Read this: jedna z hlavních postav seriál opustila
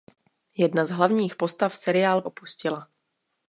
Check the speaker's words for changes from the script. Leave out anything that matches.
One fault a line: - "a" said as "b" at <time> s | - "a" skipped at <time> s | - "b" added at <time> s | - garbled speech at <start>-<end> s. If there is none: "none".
none